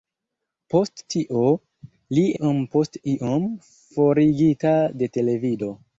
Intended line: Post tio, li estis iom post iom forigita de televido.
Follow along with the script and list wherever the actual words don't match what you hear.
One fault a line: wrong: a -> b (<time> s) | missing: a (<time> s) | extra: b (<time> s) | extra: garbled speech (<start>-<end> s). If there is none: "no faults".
missing: estis (2.2 s)